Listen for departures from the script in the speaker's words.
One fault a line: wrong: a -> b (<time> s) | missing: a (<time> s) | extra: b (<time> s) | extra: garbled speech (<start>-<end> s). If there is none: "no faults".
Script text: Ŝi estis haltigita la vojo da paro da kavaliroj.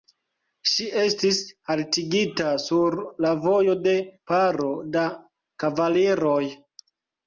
extra: sur (2.6 s)
wrong: da -> de (3.9 s)